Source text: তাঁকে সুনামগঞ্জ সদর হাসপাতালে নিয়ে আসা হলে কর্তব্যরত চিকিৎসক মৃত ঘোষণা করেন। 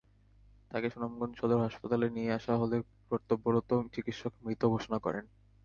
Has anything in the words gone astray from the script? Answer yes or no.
no